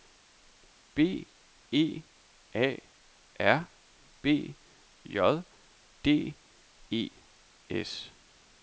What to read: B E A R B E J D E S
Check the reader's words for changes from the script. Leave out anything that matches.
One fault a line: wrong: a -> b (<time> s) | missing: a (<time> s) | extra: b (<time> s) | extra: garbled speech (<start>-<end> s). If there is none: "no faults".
missing: E (4.5 s)